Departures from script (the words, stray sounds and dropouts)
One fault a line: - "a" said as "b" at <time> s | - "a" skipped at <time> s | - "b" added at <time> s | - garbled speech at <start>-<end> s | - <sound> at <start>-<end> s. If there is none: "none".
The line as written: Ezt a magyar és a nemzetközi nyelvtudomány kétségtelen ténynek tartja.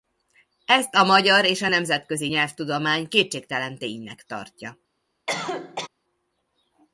- cough at 5.3-5.9 s